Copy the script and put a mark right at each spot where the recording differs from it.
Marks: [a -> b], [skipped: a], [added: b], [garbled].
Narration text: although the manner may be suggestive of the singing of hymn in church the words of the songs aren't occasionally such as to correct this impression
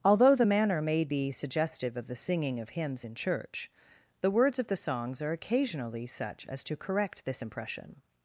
although the manner may be suggestive of the singing of [hymn -> hymns] in church the words of the songs [aren't -> are] occasionally such as to correct this impression